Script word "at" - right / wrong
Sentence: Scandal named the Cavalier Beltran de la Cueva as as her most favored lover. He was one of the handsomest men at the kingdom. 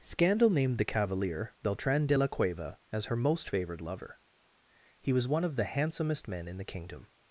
wrong